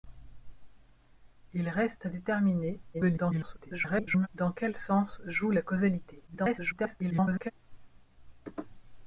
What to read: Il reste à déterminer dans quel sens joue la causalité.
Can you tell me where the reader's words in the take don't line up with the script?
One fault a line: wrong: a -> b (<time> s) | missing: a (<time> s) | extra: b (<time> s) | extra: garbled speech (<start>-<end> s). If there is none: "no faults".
extra: garbled speech (2.9-4.3 s)
extra: garbled speech (6.3-7.5 s)